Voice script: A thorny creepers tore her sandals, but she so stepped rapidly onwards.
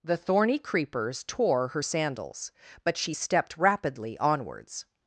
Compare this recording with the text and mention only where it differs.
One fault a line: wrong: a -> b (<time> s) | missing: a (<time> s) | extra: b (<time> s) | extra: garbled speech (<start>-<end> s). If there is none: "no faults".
wrong: A -> The (0.0 s)
missing: so (3.1 s)